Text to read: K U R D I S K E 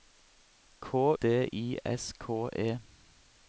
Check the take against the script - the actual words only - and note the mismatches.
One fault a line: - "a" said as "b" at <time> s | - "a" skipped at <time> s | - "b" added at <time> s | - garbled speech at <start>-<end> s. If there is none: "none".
- "U R" skipped at 0.9 s